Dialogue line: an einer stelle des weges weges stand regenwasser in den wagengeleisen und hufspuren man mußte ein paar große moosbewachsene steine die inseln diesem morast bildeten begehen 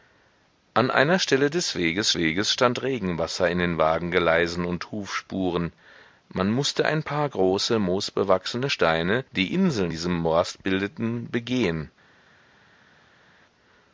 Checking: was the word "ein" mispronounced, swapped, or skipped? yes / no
no